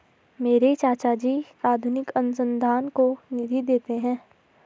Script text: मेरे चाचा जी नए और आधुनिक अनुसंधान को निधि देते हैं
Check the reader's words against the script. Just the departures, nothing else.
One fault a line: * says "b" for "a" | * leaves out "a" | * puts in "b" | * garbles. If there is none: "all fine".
* leaves out "नए और"